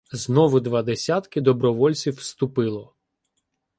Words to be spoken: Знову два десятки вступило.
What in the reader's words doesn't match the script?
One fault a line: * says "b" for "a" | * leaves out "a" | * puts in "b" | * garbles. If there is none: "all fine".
* puts in "добровольців"